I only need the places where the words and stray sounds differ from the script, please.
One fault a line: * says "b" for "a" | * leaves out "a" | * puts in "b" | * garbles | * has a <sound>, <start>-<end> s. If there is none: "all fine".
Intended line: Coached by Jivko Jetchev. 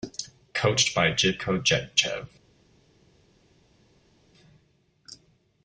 all fine